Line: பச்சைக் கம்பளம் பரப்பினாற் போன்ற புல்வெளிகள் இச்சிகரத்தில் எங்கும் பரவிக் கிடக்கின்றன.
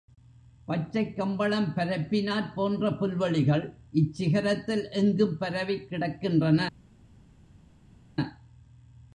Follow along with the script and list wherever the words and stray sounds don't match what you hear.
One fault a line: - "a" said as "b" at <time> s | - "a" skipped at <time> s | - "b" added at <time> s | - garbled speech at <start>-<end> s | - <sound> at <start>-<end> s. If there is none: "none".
none